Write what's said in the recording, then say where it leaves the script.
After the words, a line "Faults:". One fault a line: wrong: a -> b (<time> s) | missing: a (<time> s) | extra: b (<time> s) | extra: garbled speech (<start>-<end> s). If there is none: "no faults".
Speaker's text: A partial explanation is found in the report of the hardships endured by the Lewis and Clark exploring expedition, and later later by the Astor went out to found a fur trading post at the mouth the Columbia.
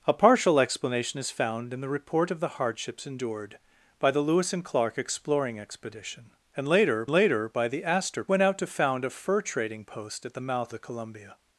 A partial explanation is found in the report of the hardships endured by the Lewis and Clark exploring expedition, and later later by the Astor went out to found a fur trading post at the mouth the Columbia.
Faults:
no faults